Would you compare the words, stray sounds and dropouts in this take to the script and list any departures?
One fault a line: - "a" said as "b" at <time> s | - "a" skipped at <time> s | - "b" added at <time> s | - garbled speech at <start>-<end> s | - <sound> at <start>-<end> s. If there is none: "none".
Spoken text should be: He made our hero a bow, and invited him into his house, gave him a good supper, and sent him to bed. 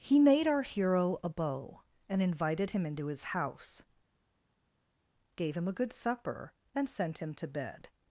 none